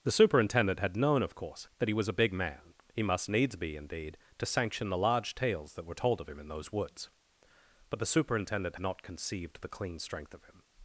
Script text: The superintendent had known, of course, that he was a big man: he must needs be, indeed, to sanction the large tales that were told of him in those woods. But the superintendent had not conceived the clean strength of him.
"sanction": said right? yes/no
yes